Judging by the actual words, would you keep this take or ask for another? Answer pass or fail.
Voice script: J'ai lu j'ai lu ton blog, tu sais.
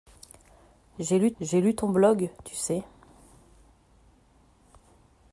pass